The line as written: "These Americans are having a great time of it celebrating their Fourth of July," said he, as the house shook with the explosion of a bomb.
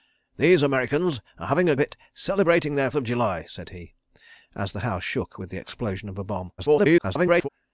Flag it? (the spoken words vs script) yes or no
yes